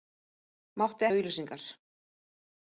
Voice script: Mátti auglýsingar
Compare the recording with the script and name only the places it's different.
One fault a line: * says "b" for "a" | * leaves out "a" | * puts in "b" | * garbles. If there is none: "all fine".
all fine